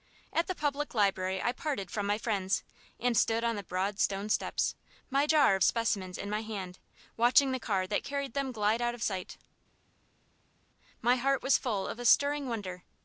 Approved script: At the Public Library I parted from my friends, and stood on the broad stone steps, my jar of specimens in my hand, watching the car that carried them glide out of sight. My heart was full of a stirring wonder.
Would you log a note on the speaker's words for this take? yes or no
no